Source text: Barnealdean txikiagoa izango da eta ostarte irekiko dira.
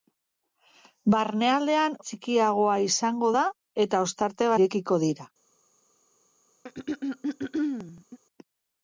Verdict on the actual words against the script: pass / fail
pass